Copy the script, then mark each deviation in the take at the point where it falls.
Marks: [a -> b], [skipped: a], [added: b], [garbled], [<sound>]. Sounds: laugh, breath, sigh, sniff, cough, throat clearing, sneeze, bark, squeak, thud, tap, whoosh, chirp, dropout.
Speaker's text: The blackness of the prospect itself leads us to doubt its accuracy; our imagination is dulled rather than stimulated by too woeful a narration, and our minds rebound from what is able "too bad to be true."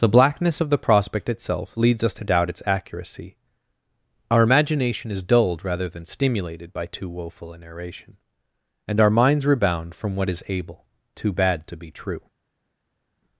The blackness of the prospect itself leads us to doubt its accuracy; our imagination is dulled rather than stimulated by too woeful a narration, and our minds rebound from what is able "too bad to be true."